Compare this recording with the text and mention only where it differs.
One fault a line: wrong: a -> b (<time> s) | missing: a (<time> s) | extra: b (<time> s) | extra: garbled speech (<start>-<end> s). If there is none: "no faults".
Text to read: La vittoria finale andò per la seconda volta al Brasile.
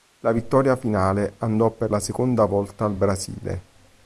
no faults